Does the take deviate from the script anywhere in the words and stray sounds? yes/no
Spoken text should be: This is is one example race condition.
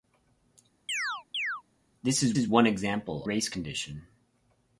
yes